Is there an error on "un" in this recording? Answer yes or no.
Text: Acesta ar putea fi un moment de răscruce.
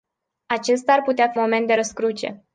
yes